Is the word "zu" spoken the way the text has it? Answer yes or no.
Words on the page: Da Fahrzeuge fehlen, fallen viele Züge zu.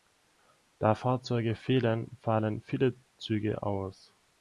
no